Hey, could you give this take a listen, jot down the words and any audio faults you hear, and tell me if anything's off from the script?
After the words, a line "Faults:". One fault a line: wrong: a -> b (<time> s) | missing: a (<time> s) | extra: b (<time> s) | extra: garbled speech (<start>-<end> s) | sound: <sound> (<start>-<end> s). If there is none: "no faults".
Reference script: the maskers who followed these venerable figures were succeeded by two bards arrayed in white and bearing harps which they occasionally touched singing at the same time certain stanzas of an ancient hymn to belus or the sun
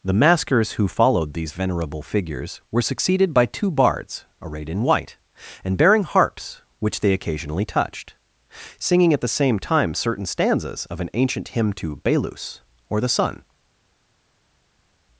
the maskers who followed these venerable figures were succeeded by two bards arrayed in white and bearing harps which they occasionally touched singing at the same time certain stanzas of an ancient hymn to belus or the sun
Faults:
no faults